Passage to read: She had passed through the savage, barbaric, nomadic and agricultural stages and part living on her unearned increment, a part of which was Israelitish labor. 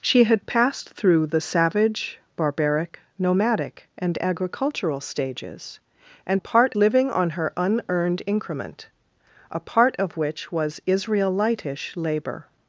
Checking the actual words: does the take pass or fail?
pass